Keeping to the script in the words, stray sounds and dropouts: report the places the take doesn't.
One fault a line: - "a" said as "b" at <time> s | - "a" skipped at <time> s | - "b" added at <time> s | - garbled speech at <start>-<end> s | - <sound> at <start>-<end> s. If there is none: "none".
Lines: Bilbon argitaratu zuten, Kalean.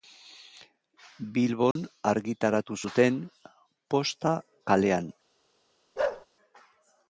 - dropout at 1.7-1.8 s
- "Posta" added at 4.0 s
- bark at 6.0-6.3 s